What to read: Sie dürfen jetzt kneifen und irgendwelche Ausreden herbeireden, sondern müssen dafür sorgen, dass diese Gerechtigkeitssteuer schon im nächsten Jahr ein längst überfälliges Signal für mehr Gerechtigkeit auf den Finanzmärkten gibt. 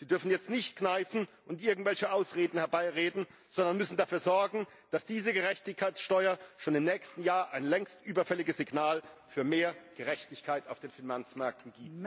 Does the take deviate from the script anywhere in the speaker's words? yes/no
yes